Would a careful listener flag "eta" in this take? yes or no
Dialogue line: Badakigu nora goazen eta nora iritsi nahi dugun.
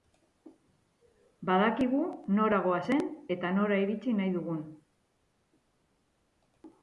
no